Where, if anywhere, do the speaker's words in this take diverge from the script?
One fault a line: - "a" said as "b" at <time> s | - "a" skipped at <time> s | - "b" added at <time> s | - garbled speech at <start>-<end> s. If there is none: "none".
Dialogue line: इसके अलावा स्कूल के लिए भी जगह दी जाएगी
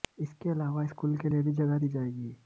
none